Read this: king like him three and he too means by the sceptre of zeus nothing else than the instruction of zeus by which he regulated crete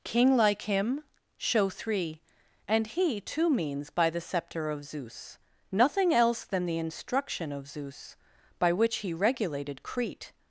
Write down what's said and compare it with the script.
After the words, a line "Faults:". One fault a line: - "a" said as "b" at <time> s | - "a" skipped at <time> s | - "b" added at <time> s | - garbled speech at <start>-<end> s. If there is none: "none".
king like him show three and he too means by the sceptre of zeus nothing else than the instruction of zeus by which he regulated crete
Faults:
- "show" added at 1.4 s